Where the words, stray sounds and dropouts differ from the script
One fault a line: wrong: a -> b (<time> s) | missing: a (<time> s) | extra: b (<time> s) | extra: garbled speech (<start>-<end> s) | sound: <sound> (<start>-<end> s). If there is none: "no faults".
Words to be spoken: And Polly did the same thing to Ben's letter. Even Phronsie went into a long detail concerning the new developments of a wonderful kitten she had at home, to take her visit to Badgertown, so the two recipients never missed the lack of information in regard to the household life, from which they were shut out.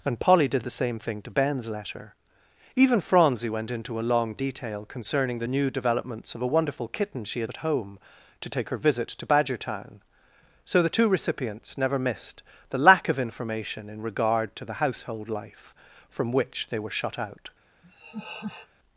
sound: laugh (17.8-18.7 s)